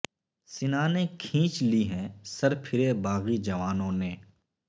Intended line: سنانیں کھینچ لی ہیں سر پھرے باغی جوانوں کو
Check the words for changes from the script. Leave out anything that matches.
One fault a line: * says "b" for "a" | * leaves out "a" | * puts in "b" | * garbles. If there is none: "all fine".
* says "نے" for "کو"